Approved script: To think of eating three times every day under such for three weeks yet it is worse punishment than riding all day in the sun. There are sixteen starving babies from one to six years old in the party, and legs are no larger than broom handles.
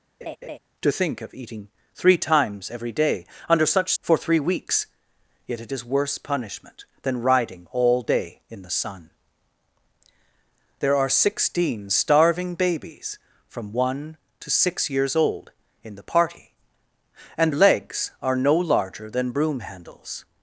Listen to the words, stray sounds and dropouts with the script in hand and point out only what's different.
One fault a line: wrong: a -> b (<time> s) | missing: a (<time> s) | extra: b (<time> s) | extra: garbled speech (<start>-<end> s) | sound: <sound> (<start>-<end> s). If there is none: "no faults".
sound: laugh (0.2-0.6 s)